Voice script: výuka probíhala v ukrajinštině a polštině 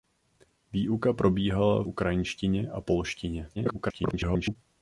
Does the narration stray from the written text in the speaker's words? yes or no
yes